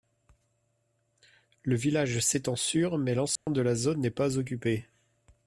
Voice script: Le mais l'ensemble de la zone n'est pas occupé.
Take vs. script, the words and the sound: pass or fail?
fail